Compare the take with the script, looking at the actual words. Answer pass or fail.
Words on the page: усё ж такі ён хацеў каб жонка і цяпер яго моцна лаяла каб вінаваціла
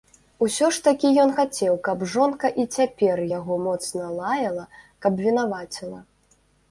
pass